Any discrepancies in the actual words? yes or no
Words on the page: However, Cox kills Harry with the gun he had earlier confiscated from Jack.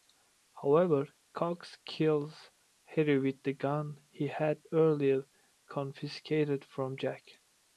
no